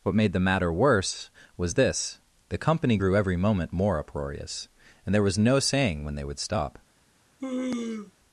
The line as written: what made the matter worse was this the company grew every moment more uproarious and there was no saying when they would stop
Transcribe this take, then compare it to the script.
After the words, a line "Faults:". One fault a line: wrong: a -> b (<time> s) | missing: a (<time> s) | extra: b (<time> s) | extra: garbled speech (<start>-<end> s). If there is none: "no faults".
what made the matter worse was this the company grew every moment more uproarious and there was no saying when they would stop
Faults:
no faults